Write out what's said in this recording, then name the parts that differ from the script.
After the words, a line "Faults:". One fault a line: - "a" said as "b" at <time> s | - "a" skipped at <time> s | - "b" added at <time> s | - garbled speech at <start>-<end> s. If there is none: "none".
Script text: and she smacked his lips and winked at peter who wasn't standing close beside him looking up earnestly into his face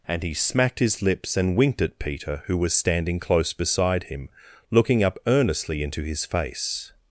and he smacked his lips and winked at peter who was standing close beside him looking up earnestly into his face
Faults:
- "she" said as "he" at 0.2 s
- "wasn't" said as "was" at 2.6 s